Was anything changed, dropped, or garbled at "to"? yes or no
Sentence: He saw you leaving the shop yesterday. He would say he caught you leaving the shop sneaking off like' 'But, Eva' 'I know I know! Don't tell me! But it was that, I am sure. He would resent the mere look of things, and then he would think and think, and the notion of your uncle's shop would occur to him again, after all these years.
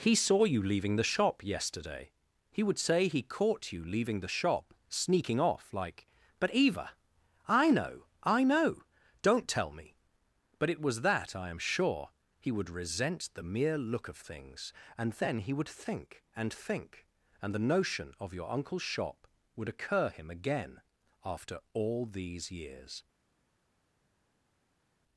yes